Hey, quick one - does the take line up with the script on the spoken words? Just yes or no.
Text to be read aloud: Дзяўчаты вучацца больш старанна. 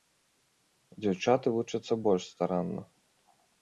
yes